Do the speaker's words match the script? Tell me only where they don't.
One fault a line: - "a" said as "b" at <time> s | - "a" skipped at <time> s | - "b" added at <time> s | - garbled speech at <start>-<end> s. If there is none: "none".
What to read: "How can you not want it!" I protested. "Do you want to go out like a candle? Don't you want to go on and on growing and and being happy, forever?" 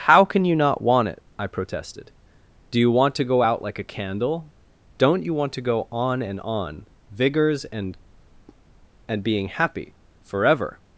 - "growing" said as "vigors" at 7.1 s